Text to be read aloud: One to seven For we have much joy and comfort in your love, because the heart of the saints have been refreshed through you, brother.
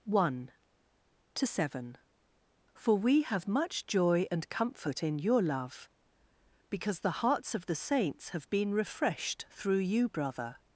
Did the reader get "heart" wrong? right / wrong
wrong